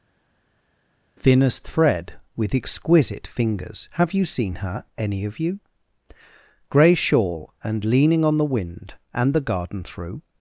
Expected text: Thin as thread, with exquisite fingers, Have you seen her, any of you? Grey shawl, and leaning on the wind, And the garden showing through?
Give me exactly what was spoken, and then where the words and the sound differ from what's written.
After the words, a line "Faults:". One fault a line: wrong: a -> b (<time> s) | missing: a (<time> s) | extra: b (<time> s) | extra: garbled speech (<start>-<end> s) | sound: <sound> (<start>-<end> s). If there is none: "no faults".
Thin as thread, with exquisite fingers, Have you seen her, any of you? Grey shawl, and leaning on the wind, And the garden through?
Faults:
missing: showing (9.8 s)